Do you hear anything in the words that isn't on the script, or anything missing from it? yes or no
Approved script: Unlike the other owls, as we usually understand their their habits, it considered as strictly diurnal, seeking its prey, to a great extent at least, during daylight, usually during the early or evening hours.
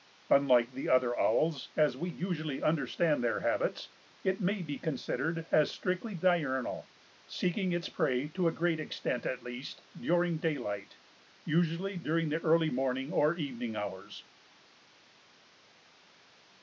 yes